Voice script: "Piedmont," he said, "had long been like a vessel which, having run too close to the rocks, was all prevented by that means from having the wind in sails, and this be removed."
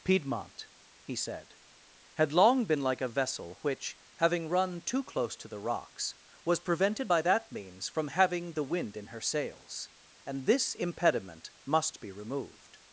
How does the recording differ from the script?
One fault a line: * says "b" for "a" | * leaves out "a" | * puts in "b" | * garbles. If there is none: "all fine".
* leaves out "all"
* puts in "her"
* puts in "impediment must"